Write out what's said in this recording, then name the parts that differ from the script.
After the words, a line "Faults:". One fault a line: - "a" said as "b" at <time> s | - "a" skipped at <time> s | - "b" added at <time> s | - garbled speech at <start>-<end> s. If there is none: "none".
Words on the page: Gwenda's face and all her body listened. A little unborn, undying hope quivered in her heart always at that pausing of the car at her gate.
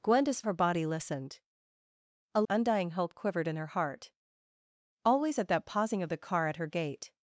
Gwenda's her body listened. A undying hope quivered in her heart always at that pausing of the car at her gate.
Faults:
- "face and all" skipped at 0.4 s
- "little unborn" skipped at 2.4 s